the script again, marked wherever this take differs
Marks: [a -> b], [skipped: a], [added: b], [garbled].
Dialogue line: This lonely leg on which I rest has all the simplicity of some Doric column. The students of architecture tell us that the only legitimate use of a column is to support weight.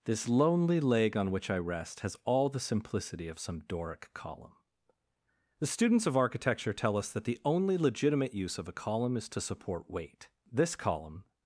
This lonely leg on which I rest has all the simplicity of some Doric column. The students of architecture tell us that the only legitimate use of a column is to support weight. [added: This column]